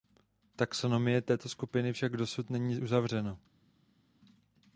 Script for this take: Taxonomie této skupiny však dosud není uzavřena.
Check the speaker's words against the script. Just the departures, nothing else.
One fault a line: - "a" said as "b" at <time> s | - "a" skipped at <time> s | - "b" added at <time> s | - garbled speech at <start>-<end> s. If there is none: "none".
none